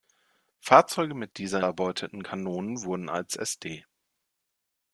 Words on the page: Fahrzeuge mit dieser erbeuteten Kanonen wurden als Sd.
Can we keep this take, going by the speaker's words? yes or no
yes